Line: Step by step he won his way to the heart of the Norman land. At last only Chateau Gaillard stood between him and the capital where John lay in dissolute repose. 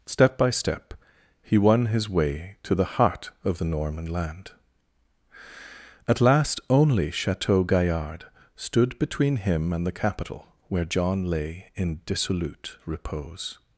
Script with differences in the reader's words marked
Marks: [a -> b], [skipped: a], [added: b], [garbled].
Step by step he won his way to the heart of the Norman land. At last only Chateau Gaillard stood between him and the capital where John lay in dissolute repose.